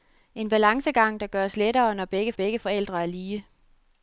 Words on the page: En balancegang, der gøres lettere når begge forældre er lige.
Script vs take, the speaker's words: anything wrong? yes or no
yes